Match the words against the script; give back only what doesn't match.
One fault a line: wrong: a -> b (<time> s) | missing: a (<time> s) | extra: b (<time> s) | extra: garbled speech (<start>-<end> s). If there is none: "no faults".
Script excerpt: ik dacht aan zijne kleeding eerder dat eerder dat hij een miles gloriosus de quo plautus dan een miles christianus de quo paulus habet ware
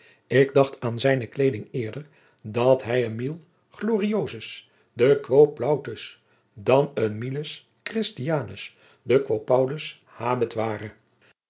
missing: eerder dat (2.8 s)